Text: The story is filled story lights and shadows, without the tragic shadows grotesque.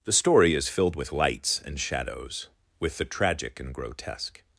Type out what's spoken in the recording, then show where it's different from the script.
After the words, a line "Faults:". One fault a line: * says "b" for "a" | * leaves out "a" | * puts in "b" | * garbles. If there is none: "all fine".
The story is filled with lights and shadows, with the tragic and grotesque.
Faults:
* says "with" for "story"
* says "with" for "without"
* says "and" for "shadows"